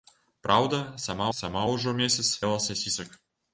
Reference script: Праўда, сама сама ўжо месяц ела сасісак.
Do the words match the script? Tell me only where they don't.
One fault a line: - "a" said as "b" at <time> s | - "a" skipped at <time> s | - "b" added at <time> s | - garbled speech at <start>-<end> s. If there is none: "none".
none